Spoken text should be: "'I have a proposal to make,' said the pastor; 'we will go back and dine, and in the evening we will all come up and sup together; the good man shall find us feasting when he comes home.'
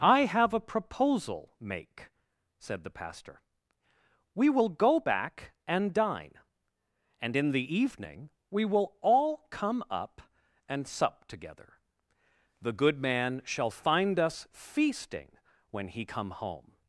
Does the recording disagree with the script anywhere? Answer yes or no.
yes